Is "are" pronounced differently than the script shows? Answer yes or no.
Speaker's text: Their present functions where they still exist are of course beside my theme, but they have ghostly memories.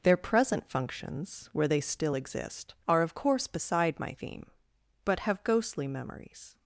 no